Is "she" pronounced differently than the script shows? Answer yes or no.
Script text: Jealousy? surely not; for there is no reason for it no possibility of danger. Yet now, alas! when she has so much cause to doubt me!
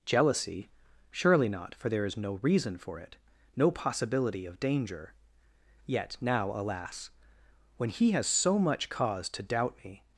yes